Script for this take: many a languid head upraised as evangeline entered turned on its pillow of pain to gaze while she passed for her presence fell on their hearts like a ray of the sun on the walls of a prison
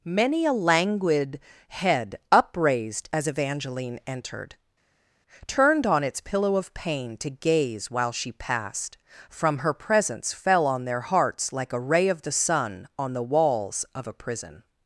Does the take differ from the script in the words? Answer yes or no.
yes